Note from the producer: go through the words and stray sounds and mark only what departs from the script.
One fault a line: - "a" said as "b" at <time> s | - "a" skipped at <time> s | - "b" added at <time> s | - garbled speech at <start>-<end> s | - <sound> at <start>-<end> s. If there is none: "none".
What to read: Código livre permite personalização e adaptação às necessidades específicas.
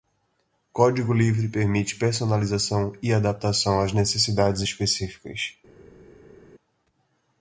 none